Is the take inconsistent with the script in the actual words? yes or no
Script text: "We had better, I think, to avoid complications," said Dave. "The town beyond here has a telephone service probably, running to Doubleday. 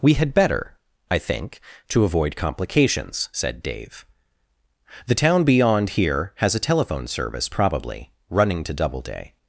no